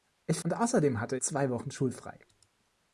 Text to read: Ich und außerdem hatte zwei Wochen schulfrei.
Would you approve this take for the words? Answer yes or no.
yes